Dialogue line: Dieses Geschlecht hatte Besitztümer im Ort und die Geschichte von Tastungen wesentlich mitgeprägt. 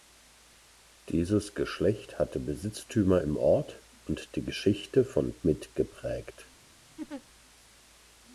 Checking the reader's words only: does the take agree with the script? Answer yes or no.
no